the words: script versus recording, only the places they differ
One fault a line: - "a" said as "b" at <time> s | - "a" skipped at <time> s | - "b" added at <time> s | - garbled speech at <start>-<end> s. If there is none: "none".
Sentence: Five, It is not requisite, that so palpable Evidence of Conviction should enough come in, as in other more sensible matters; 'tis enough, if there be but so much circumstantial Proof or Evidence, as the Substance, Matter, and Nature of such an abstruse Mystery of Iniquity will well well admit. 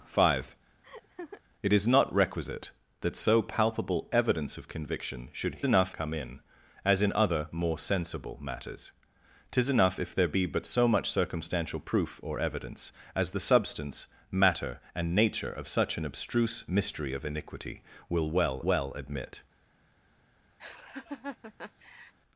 none